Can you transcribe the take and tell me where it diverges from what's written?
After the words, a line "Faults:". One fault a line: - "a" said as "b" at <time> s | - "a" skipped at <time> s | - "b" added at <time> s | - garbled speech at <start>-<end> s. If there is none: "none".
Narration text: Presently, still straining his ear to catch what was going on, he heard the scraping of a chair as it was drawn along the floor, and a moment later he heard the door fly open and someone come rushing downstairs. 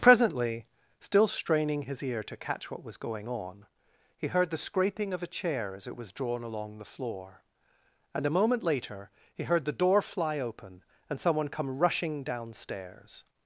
Presently, still straining his ear to catch what was going on, he heard the scraping of a chair as it was drawn along the floor, and a moment later he heard the door fly open and someone come rushing downstairs.
Faults:
none